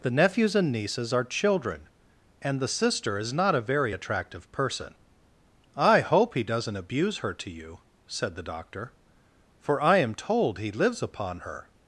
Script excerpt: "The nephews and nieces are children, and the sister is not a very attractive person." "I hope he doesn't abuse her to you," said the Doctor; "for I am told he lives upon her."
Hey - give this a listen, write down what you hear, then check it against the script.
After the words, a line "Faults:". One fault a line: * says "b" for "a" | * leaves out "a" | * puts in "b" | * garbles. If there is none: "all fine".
"The nephews and nieces are children, and the sister is not a very attractive person." "I hope he doesn't abuse her to you," said the Doctor; "for I am told he lives upon her."
Faults:
all fine